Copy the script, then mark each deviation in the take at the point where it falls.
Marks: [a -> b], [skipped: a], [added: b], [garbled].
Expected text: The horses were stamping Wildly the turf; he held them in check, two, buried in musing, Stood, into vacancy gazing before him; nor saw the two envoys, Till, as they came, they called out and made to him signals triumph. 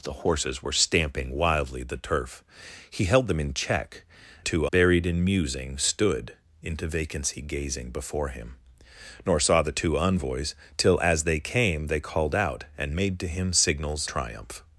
The horses were stamping Wildly the turf; he held them in check, two, buried in musing, Stood, into vacancy gazing before him; nor saw the two envoys, Till, as they came, they called out and made to him signals triumph.